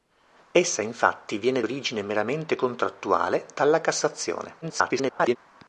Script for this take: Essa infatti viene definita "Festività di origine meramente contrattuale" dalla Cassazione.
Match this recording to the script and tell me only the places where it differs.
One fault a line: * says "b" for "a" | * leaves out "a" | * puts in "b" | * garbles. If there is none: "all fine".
* leaves out "definita Festività di"
* garbles